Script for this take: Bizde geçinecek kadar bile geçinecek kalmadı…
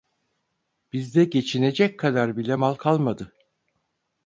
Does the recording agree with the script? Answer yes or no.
no